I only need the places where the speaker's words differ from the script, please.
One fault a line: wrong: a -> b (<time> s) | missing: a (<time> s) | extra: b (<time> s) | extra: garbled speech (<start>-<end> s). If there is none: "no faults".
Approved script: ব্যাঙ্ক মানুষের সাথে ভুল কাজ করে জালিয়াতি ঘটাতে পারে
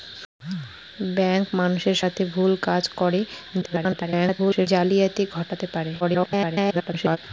extra: garbled speech (3.6-4.7 s)
extra: garbled speech (6.0-7.2 s)